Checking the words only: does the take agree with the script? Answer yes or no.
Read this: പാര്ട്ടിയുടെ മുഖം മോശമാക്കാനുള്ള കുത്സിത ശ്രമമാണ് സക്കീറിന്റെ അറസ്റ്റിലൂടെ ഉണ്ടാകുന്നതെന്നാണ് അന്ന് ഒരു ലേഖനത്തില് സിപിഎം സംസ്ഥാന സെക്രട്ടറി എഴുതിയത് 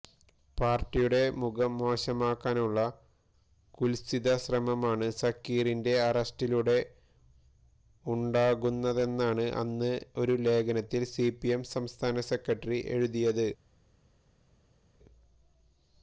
yes